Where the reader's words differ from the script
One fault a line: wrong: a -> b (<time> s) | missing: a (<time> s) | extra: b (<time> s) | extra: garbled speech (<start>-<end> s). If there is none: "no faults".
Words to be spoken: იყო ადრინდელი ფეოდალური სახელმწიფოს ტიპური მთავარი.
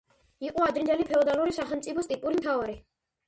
no faults